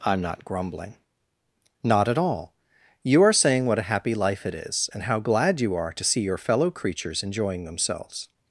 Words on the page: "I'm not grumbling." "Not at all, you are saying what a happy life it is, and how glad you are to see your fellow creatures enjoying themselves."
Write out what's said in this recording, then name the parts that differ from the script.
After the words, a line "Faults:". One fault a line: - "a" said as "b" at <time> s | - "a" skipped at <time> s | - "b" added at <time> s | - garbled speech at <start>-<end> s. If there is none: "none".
"I'm not grumbling." "Not at all, you are saying what a happy life it is, and how glad you are to see your fellow creatures enjoying themselves."
Faults:
none